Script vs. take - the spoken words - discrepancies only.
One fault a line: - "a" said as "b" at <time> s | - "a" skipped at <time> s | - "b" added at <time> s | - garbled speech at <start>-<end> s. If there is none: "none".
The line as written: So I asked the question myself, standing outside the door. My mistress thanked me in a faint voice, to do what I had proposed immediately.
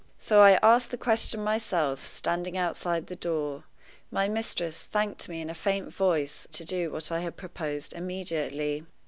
none